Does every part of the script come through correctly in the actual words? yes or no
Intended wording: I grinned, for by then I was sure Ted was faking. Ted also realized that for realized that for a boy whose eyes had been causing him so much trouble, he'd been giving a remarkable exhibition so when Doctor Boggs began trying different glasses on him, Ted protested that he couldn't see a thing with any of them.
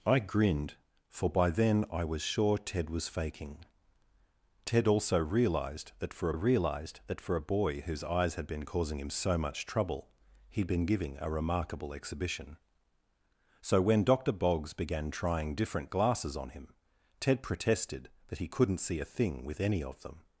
yes